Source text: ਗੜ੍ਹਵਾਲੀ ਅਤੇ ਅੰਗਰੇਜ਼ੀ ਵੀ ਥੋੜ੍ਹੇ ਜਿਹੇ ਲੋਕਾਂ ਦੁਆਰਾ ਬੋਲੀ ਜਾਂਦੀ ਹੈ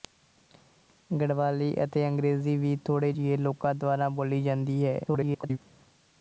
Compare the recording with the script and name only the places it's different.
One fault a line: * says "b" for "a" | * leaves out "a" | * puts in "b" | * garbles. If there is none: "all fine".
* garbles